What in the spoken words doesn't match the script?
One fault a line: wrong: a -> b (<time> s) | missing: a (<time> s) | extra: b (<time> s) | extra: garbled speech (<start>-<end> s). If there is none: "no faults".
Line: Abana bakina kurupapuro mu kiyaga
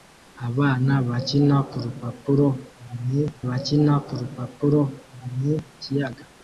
extra: bakina kurupapuro mu (3.5 s)